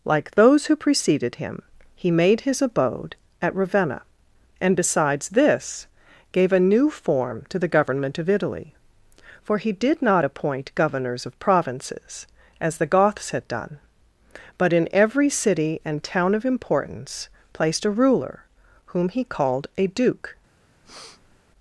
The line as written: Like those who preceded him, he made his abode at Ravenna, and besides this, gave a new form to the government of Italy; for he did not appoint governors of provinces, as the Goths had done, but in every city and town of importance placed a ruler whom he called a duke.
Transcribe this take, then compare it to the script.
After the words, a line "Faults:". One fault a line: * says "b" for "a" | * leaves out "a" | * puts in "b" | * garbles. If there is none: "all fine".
Like those who preceded him, he made his abode at Ravenna, and besides this, gave a new form to the government of Italy; for he did not appoint governors of provinces, as the Goths had done, but in every city and town of importance placed a ruler whom he called a duke.
Faults:
all fine